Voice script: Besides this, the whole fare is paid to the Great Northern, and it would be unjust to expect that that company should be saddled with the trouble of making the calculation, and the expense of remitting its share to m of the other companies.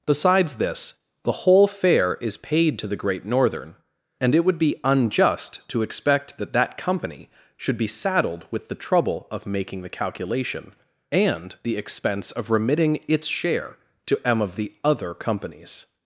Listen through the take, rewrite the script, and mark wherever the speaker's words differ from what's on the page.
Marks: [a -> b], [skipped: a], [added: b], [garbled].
Besides this, the whole fare is paid to the Great Northern, and it would be unjust to expect that that company should be saddled with the trouble of making the calculation, and the expense of remitting its share to m of the other companies.